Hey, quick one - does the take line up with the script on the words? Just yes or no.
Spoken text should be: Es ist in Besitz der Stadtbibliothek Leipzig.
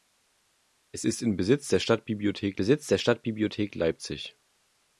no